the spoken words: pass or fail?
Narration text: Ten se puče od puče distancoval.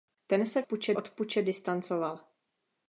pass